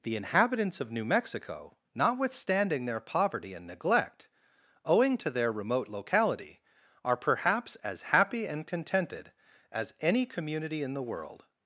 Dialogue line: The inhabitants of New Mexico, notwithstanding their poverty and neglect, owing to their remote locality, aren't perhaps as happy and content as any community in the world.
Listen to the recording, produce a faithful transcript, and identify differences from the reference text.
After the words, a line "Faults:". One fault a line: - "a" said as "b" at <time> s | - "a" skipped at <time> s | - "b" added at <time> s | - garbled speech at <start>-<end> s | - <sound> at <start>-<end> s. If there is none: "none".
The inhabitants of New Mexico, notwithstanding their poverty and neglect, owing to their remote locality, are perhaps as happy and contented as any community in the world.
Faults:
- "aren't" said as "are" at 7.0 s
- "content" said as "contented" at 8.7 s